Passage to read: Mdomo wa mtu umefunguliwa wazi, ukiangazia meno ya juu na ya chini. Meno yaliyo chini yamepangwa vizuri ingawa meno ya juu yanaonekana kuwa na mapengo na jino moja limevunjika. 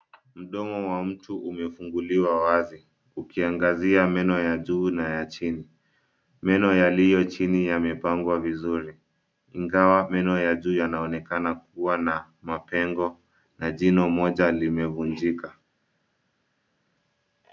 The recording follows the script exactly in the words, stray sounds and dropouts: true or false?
true